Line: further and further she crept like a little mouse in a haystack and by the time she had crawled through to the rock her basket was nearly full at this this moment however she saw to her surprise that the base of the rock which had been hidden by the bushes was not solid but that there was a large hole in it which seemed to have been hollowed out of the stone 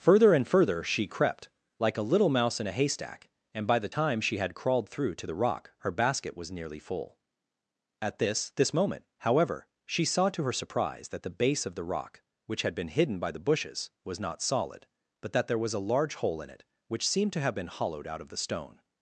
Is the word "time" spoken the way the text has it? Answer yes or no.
yes